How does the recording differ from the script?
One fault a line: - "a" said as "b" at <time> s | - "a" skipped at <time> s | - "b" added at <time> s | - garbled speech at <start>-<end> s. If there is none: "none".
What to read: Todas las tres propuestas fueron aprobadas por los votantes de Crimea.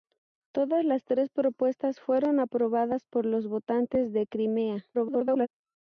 - garbled speech at 4.9-5.5 s